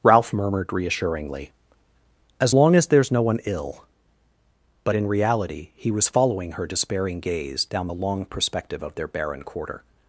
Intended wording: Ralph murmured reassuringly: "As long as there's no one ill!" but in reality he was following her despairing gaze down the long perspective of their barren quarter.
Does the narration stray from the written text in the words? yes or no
no